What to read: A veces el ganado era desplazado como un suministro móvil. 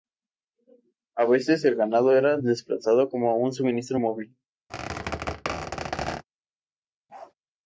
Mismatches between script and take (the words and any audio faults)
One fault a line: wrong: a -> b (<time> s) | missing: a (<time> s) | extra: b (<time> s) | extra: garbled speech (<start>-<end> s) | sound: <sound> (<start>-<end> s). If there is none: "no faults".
sound: squeak (4.7-6.2 s)
sound: bark (7.1-7.3 s)